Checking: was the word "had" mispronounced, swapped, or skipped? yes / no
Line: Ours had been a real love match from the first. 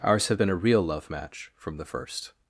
yes